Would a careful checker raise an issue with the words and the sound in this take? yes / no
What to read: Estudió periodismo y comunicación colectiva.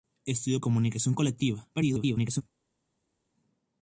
yes